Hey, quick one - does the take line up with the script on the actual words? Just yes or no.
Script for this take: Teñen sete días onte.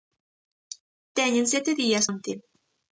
yes